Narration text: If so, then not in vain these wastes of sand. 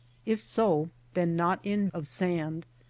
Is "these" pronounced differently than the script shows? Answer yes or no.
yes